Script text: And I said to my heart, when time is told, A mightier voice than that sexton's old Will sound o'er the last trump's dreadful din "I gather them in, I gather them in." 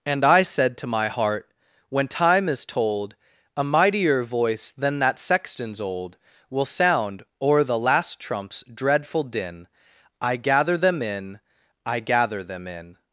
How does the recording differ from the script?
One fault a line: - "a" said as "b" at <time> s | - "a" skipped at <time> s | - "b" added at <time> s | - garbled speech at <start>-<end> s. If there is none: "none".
none